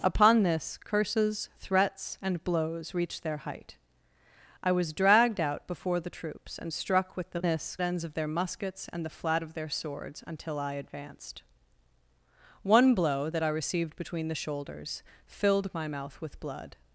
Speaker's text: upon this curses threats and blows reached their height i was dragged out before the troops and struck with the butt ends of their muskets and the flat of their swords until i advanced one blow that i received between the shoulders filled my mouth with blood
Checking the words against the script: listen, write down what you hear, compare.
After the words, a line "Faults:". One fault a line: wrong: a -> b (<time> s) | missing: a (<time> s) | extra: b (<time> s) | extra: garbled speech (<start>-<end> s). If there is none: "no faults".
upon this curses threats and blows reached their height i was dragged out before the troops and struck with the this ends of their muskets and the flat of their swords until i advanced one blow that i received between the shoulders filled my mouth with blood
Faults:
wrong: butt -> this (7.4 s)